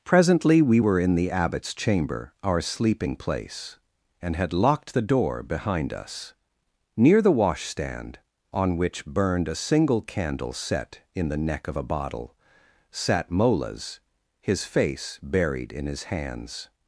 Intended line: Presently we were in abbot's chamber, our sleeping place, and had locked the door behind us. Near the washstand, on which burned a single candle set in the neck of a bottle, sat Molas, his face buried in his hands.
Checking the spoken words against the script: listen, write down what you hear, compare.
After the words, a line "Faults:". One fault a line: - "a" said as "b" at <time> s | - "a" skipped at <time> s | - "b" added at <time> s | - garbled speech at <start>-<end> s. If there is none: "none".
Presently we were in the abbot's chamber, our sleeping place, and had locked the door behind us. Near the washstand, on which burned a single candle set in the neck of a bottle, sat Molas, his face buried in his hands.
Faults:
- "the" added at 1.1 s